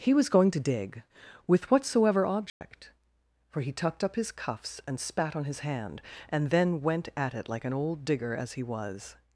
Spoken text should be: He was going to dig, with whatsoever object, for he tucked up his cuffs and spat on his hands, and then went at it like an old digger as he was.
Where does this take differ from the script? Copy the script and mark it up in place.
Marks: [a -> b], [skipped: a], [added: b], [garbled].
He was going to dig, with whatsoever object, for he tucked up his cuffs and spat on his [hands, -> hand] and then went at it like an old digger as he was.